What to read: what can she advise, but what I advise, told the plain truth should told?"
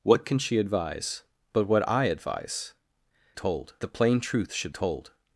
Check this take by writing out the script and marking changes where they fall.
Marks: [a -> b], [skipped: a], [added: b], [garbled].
what can she advise, but what I advise, told the plain truth should told?"